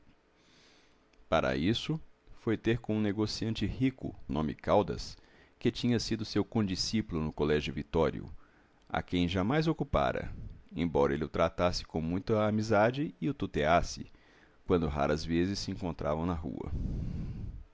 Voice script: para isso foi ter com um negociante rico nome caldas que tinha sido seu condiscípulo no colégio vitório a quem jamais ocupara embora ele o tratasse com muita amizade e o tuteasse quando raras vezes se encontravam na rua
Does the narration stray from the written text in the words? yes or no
no